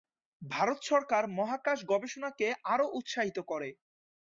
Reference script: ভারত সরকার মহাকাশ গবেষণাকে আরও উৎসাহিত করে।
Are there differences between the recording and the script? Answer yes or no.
no